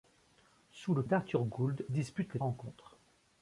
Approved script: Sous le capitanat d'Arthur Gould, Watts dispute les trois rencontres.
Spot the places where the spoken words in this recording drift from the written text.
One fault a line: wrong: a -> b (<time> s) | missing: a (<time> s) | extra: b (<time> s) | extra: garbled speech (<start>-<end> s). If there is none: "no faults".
missing: capitanat (1.0 s)
missing: Watts (1.8 s)
missing: trois (2.4 s)